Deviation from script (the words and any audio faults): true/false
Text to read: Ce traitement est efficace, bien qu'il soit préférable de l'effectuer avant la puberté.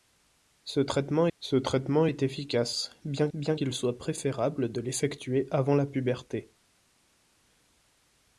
true